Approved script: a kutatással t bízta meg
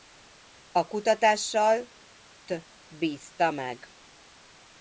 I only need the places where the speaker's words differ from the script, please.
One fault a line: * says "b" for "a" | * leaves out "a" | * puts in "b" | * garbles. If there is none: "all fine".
all fine